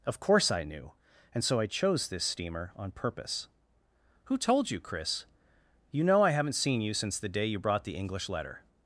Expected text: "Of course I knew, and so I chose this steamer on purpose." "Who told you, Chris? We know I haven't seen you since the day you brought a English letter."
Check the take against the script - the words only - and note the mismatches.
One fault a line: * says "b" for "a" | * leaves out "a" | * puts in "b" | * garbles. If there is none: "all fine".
* says "You" for "We"
* says "the" for "a"